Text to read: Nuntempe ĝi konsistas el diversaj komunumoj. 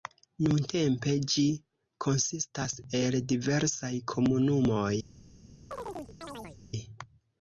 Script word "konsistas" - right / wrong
right